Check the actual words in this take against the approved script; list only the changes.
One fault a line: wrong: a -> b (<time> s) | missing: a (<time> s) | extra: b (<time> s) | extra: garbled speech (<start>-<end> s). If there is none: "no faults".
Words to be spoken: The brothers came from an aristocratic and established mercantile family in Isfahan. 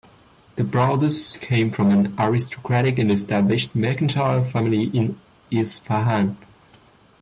no faults